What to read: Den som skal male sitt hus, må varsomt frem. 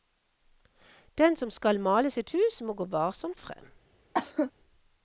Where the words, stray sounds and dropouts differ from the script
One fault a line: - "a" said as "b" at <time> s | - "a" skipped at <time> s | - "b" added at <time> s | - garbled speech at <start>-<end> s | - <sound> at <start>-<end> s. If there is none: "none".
- "gå" added at 2.7 s
- cough at 4.1-4.5 s